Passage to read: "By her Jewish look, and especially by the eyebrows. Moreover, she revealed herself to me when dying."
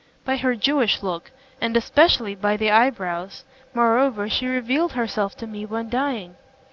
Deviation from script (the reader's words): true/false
false